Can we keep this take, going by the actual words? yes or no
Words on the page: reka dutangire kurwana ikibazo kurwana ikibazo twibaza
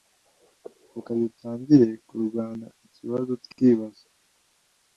no